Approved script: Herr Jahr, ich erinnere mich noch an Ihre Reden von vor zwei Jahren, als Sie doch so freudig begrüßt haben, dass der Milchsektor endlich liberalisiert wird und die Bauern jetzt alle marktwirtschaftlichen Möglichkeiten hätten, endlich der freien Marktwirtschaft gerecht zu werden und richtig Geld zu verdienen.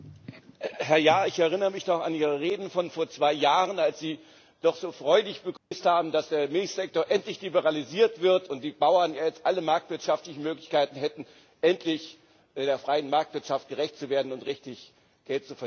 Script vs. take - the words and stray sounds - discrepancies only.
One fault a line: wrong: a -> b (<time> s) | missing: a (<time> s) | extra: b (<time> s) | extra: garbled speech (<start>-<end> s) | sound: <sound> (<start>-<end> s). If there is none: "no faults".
sound: dropout (5.6-5.7 s)